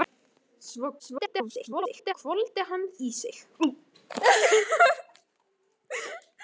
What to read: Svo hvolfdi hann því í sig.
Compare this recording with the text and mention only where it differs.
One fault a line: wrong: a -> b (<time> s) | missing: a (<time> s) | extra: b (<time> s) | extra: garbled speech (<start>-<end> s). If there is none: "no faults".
extra: garbled speech (1.0-2.1 s)
missing: því (2.8 s)